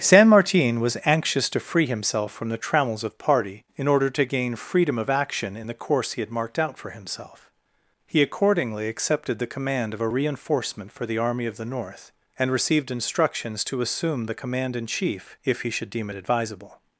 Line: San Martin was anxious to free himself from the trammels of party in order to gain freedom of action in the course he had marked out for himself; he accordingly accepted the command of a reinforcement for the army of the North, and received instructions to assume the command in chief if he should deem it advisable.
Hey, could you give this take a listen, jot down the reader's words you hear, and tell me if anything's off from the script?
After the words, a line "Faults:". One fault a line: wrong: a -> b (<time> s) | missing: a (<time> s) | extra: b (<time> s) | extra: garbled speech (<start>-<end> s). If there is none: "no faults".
San Martin was anxious to free himself from the trammels of party in order to gain freedom of action in the course he had marked out for himself; he accordingly accepted the command of a reinforcement for the army of the North, and received instructions to assume the command in chief if he should deem it advisable.
Faults:
no faults